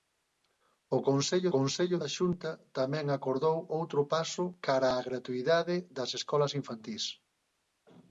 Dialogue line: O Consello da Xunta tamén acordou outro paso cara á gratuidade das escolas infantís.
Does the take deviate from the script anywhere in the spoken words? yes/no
yes